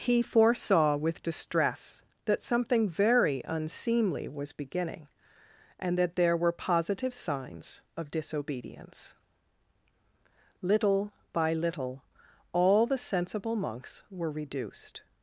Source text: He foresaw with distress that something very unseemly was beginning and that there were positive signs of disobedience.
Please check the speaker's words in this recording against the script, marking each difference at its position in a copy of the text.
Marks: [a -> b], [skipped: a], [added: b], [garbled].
He foresaw with distress that something very unseemly was beginning and that there were positive signs of disobedience. [added: Little by little all the sensible monks were reduced]